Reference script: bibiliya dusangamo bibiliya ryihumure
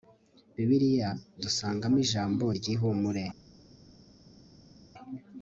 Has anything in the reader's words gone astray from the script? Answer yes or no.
yes